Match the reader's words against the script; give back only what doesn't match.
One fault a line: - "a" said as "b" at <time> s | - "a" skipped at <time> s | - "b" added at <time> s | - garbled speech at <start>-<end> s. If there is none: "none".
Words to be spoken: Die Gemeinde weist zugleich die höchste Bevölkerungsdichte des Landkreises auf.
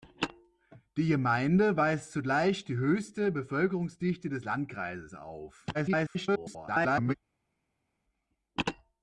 - garbled speech at 5.7-7.1 s